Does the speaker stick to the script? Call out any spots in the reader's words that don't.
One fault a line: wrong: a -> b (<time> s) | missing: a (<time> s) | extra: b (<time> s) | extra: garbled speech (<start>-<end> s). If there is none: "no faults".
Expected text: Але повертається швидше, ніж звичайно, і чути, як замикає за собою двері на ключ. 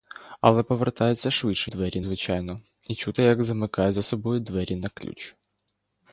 wrong: ніж -> двері (1.6 s)